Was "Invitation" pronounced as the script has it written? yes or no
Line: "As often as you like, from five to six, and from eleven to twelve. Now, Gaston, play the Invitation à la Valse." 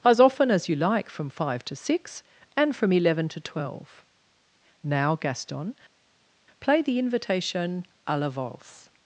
yes